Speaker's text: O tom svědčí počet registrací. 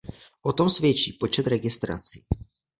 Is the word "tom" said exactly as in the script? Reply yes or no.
yes